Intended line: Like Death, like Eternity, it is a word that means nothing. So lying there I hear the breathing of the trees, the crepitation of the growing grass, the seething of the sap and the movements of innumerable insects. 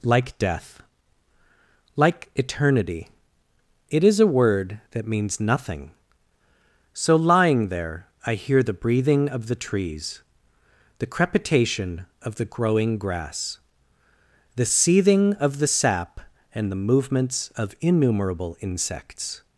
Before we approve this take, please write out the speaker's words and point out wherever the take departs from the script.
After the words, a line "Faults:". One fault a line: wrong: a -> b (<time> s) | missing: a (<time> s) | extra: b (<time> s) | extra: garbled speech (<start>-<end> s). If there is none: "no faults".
Like Death, like Eternity, it is a word that means nothing. So lying there I hear the breathing of the trees, the crepitation of the growing grass, the seething of the sap and the movements of innumerable insects.
Faults:
no faults